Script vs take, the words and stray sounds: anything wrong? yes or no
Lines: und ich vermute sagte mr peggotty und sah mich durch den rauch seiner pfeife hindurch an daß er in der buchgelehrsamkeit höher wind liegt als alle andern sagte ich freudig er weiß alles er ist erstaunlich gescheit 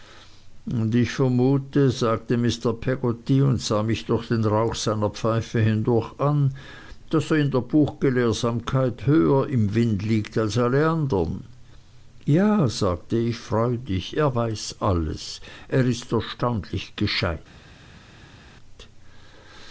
yes